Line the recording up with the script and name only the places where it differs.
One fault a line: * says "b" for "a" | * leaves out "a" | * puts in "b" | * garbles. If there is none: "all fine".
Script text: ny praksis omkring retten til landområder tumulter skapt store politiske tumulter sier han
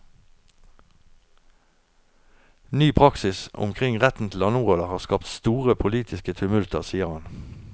* says "har" for "tumulter"